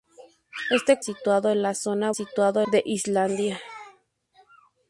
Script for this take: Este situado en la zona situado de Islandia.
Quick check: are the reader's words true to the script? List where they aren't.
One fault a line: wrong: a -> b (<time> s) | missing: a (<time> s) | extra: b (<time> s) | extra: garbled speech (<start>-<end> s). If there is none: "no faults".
no faults